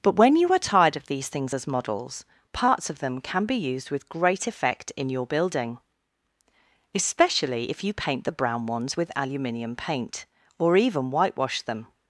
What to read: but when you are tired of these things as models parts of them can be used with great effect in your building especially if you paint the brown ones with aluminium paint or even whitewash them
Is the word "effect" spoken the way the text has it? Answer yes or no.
yes